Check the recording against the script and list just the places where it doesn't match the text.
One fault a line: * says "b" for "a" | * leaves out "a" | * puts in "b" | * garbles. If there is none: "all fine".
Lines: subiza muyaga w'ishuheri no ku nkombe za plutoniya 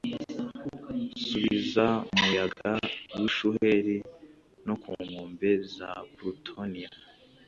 all fine